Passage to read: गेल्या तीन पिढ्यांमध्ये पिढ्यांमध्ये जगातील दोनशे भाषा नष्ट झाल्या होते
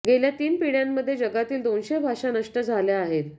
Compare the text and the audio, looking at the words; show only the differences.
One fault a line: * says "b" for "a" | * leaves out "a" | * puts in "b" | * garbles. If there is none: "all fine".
* leaves out "पिढ्यांमध्ये"
* says "आहेत" for "होते"